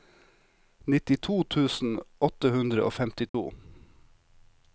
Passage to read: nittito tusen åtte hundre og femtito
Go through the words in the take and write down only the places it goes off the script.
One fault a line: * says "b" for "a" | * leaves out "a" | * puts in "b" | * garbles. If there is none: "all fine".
all fine